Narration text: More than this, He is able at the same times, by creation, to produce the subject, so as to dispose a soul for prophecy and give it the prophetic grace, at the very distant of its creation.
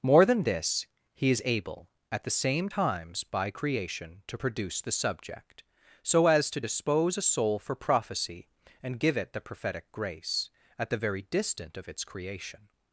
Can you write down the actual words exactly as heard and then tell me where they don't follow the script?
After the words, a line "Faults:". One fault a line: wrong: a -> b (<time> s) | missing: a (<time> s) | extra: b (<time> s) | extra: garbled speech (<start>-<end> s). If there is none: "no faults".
More than this, He is able at the same times, by creation, to produce the subject, so as to dispose a soul for prophecy and give it the prophetic grace, at the very distant of its creation.
Faults:
no faults